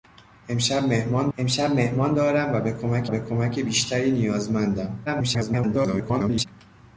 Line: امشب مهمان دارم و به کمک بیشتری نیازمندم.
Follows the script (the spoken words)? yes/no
no